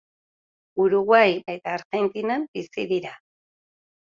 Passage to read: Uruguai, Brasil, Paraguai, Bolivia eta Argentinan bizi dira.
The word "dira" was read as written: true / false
true